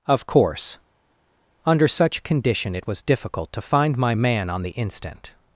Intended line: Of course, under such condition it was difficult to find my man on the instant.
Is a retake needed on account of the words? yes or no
no